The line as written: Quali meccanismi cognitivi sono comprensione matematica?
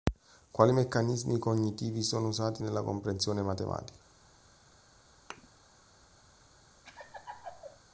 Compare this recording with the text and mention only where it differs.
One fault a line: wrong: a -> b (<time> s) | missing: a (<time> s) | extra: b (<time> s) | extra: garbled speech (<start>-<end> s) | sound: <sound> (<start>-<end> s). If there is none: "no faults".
extra: usati nella (2.3 s)
sound: thud (5.3-5.5 s)
sound: laugh (6.8-7.8 s)